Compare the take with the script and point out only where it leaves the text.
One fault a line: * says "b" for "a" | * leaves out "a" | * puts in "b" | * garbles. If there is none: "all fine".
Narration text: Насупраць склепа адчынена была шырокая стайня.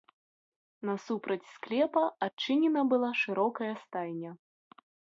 all fine